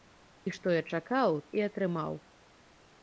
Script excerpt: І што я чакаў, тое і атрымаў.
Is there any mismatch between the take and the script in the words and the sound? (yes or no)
yes